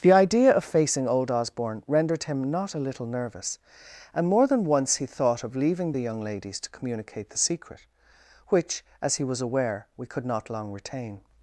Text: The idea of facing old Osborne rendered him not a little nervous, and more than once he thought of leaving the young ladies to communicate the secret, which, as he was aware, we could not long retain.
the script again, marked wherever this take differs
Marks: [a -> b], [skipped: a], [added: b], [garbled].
The idea of facing old Osborne rendered him not a little nervous, and more than once he thought of leaving the young ladies to communicate the secret, which, as he was aware, we could not long retain.